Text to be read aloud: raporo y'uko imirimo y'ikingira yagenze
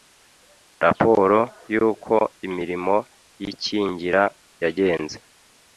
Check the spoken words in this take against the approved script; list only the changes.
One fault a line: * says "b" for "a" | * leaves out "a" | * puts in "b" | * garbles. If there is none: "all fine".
all fine